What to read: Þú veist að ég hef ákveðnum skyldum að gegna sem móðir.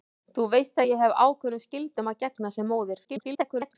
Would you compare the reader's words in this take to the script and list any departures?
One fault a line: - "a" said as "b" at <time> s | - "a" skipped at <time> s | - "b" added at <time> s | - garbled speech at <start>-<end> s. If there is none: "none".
- garbled speech at 3.0-3.8 s